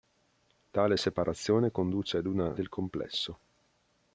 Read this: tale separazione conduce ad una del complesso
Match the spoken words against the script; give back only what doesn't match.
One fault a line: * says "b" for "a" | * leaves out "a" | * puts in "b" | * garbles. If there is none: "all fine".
all fine